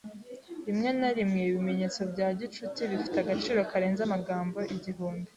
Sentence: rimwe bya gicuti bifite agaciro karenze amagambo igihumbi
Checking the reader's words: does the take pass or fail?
fail